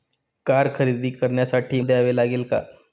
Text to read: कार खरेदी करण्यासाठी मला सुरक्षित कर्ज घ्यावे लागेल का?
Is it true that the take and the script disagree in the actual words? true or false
true